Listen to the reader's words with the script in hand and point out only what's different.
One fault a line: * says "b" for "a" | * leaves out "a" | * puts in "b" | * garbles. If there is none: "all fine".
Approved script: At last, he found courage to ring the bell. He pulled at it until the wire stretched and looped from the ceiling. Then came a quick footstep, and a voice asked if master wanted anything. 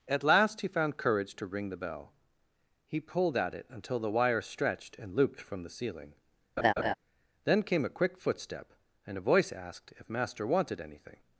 all fine